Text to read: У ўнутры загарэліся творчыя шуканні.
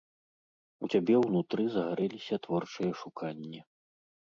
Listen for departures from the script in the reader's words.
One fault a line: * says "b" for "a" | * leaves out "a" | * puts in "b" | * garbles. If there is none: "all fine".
* puts in "цябе"